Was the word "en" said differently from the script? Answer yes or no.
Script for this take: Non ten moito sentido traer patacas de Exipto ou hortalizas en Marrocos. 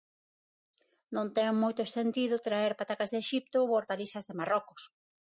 yes